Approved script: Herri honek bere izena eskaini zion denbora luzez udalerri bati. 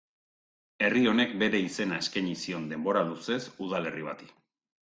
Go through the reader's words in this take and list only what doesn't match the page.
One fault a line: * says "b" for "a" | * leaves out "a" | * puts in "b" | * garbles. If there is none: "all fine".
all fine